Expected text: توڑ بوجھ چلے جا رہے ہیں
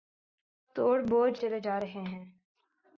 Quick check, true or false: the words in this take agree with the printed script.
true